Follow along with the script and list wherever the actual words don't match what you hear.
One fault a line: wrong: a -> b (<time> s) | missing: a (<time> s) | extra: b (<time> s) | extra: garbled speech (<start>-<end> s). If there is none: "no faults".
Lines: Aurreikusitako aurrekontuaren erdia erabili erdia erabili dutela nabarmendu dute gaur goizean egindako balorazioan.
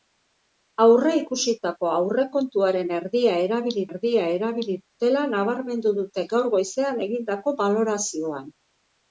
no faults